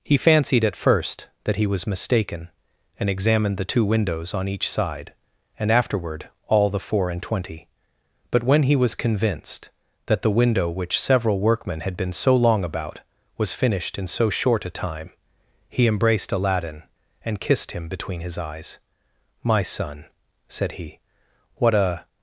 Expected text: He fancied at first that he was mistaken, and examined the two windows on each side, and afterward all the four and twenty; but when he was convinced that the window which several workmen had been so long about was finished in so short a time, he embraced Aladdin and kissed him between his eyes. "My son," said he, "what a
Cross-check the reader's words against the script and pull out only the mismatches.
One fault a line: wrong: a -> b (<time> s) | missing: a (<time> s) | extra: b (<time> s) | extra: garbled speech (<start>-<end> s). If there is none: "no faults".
no faults